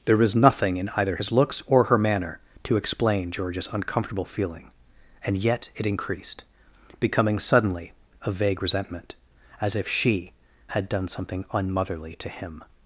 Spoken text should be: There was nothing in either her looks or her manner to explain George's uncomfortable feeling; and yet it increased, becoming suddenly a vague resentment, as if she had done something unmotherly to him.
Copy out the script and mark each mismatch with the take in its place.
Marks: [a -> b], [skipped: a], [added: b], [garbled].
There was nothing in either [her -> his] looks or her manner to explain George's uncomfortable feeling; and yet it increased, becoming suddenly a vague resentment, as if she had done something unmotherly to him.